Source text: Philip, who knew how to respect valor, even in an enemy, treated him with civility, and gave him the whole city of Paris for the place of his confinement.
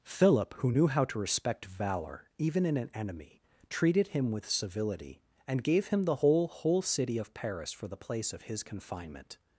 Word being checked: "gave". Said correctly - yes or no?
yes